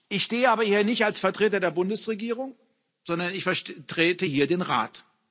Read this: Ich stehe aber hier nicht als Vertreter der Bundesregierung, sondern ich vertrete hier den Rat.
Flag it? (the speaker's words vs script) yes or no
no